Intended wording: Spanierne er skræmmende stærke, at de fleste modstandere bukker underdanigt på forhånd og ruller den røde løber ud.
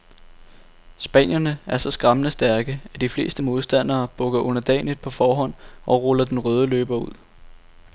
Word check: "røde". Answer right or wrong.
right